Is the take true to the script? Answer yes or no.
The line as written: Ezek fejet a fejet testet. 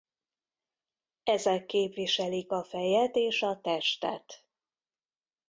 no